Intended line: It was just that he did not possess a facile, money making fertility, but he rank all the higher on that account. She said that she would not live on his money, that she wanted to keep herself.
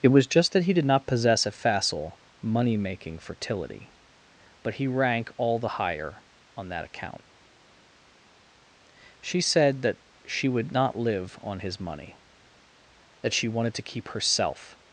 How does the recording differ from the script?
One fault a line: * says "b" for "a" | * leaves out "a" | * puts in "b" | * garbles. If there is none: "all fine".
all fine